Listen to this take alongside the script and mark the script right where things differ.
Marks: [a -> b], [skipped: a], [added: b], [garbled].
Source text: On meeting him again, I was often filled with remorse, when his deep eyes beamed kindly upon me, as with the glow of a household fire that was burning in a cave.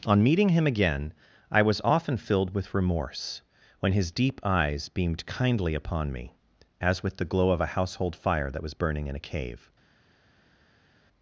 On meeting him again, I was often filled with remorse, when his deep eyes beamed kindly upon me, as with the glow of a household fire that was burning in a cave.